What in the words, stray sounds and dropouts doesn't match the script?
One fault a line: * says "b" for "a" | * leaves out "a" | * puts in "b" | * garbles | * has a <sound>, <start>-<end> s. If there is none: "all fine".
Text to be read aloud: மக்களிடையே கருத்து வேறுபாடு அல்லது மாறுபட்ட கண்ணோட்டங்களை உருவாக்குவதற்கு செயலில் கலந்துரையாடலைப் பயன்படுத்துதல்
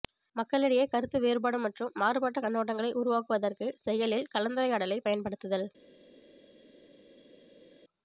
* says "மற்றும்" for "அல்லது"